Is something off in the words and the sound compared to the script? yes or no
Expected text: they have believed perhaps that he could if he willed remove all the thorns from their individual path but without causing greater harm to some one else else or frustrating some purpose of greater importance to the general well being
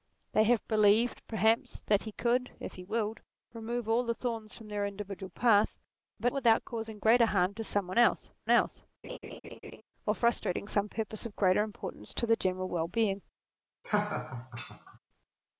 yes